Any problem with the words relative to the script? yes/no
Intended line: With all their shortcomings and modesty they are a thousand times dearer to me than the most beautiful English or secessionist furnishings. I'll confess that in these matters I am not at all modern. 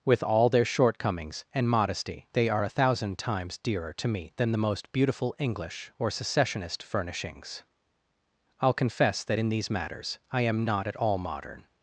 no